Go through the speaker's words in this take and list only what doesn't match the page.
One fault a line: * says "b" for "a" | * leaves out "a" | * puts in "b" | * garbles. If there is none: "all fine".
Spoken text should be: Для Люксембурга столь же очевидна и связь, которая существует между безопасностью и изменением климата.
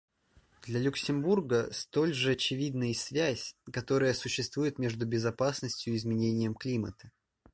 all fine